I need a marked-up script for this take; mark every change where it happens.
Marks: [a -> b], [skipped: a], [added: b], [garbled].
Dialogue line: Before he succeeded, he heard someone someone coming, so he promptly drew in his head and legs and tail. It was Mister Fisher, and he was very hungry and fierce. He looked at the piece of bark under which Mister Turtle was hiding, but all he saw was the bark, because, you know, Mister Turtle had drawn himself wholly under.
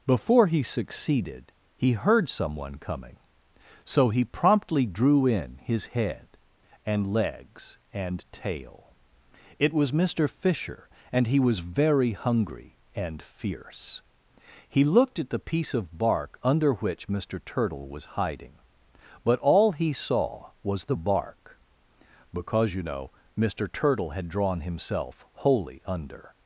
Before he succeeded, he heard someone [skipped: someone] coming, so he promptly drew in his head and legs and tail. It was Mister Fisher, and he was very hungry and fierce. He looked at the piece of bark under which Mister Turtle was hiding, but all he saw was the bark, because, you know, Mister Turtle had drawn himself wholly under.